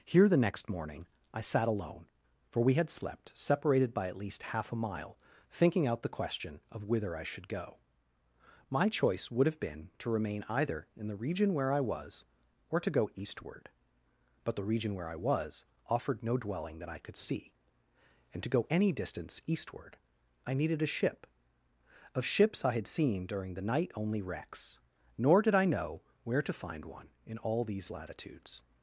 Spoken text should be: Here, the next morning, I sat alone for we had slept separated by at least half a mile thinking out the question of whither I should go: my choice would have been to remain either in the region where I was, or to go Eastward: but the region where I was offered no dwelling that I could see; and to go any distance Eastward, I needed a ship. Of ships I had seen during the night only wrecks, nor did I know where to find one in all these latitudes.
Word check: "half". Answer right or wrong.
right